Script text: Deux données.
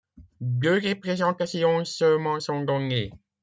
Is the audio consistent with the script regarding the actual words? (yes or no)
no